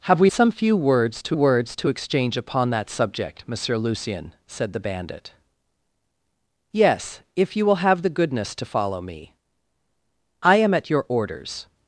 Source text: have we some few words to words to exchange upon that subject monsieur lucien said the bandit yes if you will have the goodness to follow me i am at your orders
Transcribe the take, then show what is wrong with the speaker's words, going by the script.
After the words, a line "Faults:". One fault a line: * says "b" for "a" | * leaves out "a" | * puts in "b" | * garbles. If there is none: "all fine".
have we some few words to words to exchange upon that subject monsieur lucien said the bandit yes if you will have the goodness to follow me i am at your orders
Faults:
all fine